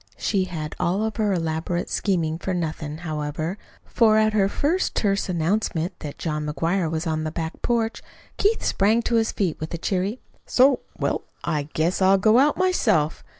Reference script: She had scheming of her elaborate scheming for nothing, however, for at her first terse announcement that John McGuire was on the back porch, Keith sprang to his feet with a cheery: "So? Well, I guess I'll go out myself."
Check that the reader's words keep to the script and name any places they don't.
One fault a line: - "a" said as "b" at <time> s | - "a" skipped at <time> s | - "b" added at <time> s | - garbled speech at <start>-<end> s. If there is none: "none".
- "scheming" said as "all" at 0.8 s